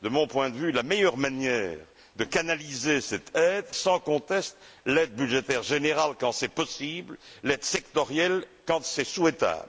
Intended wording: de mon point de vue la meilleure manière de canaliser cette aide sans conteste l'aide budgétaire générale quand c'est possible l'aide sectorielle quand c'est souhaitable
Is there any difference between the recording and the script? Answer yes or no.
no